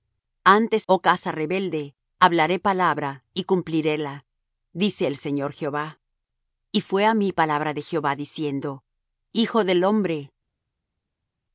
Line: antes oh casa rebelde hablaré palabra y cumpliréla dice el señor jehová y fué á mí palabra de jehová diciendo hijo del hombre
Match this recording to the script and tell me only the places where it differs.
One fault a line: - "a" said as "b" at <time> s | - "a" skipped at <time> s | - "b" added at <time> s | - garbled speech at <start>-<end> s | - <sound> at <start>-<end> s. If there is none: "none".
none